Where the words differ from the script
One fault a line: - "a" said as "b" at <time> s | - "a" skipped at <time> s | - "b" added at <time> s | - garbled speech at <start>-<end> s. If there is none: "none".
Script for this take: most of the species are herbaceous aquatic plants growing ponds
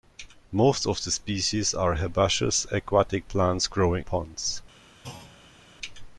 none